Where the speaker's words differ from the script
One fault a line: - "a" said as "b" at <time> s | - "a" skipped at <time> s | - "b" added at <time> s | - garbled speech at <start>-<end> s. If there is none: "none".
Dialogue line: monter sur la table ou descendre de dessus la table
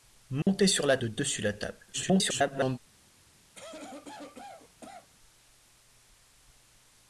- "table ou descendre" skipped at 1.0 s
- garbled speech at 1.9-2.8 s